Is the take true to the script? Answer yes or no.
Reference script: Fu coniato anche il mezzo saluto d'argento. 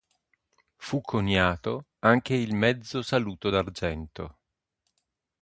yes